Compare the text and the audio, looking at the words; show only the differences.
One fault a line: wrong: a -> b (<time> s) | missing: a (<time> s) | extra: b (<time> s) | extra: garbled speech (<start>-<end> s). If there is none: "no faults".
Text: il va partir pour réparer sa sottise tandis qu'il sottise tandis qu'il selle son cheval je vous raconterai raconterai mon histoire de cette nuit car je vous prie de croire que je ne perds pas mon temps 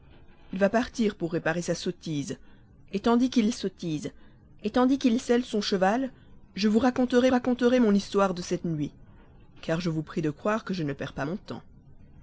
no faults